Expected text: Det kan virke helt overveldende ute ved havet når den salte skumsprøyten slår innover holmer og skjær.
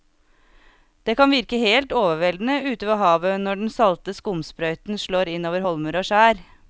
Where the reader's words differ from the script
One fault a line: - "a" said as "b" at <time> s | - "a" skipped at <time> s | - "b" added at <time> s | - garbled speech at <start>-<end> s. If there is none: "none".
none